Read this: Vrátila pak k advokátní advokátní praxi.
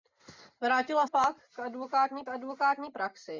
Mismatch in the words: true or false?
false